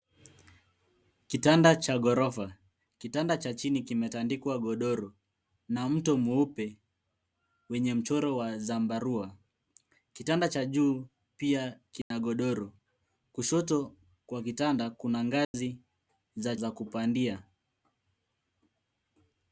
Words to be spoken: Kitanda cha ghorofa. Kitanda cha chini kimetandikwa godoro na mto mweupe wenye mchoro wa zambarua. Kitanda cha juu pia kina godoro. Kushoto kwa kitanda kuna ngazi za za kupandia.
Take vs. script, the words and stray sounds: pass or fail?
fail